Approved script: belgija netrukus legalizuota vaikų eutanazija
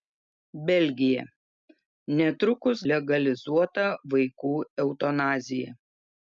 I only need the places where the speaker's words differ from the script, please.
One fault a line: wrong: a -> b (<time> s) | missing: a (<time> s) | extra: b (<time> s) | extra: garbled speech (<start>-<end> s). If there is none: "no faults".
no faults